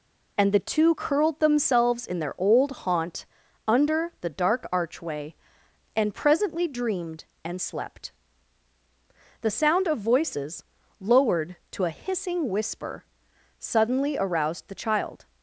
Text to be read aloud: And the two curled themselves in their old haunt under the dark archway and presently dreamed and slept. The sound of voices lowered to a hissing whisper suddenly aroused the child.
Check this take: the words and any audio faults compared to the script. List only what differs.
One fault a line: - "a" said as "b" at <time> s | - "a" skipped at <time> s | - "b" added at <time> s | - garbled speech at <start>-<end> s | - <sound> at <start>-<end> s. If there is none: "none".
none